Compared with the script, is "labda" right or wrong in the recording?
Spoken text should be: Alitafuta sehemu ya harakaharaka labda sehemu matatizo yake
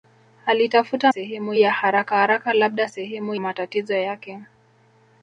right